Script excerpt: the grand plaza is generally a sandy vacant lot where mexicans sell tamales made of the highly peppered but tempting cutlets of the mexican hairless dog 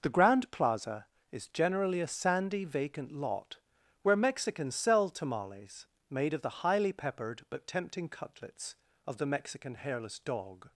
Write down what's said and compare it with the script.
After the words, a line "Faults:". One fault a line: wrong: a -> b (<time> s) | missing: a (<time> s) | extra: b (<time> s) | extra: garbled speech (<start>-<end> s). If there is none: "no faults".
the grand plaza is generally a sandy vacant lot where mexicans sell tamales made of the highly peppered but tempting cutlets of the mexican hairless dog
Faults:
no faults